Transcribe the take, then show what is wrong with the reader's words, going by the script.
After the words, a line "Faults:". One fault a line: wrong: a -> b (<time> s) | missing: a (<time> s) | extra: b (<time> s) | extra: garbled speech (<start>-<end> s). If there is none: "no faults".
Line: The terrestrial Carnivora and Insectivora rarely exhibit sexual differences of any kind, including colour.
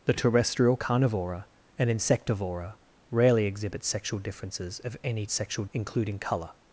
The terrestrial Carnivora and Insectivora rarely exhibit sexual differences of any sexual, including colour.
Faults:
wrong: kind -> sexual (5.3 s)